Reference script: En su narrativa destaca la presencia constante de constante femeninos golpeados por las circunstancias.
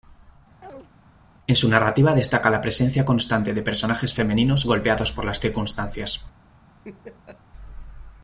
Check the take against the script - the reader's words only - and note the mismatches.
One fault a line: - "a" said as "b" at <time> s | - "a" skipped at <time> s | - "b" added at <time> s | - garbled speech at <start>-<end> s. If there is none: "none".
- "constante" said as "personajes" at 3.6 s